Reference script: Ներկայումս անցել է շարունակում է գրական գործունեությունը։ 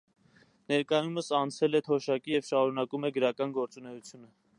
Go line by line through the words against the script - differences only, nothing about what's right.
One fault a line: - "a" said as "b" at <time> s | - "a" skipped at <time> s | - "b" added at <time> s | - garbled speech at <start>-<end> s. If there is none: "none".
- "թոշակի և" added at 1.9 s